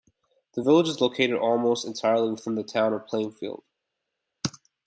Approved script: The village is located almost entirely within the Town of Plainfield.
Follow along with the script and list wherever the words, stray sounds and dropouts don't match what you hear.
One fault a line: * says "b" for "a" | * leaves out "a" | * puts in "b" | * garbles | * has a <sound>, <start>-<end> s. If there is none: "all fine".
all fine